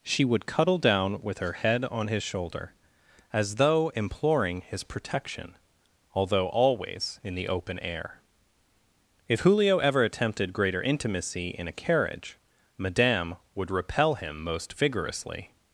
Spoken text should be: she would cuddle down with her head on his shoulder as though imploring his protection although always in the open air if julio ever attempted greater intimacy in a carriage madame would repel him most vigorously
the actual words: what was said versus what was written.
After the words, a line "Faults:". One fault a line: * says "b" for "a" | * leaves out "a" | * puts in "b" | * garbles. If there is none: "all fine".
she would cuddle down with her head on his shoulder as though imploring his protection although always in the open air if julio ever attempted greater intimacy in a carriage madame would repel him most vigorously
Faults:
all fine